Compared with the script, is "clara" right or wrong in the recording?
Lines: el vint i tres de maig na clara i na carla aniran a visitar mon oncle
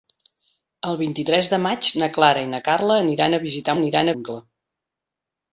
right